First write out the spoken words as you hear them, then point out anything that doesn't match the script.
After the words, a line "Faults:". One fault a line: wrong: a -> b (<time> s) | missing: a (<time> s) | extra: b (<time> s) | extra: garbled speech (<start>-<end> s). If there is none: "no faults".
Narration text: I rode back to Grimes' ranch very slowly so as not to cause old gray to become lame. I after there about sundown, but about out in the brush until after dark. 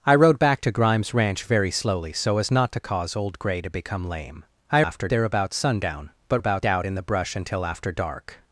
I rode back to Grimes' ranch very slowly so as not to cause old gray to become lame. I after there about sundown, but about out in the brush until after dark.
Faults:
no faults